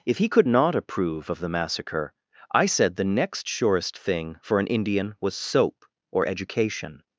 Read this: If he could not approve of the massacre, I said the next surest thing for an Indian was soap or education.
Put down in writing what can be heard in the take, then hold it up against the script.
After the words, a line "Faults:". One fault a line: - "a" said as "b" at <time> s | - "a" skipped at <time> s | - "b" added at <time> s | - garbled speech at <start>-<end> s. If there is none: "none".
If he could not approve of the massacre, I said the next surest thing for an Indian was soap or education.
Faults:
none